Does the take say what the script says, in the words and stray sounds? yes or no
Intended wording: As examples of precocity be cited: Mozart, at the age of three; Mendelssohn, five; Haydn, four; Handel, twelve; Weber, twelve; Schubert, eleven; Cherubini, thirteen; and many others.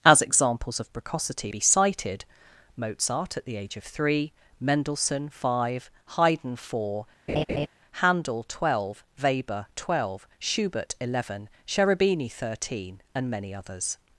no